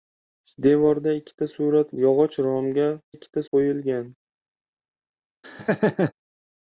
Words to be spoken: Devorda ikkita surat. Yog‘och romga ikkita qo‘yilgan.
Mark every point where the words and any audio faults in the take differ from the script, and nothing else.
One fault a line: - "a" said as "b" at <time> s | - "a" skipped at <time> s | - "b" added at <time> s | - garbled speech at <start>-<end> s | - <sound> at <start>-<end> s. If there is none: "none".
- laugh at 5.4-6.1 s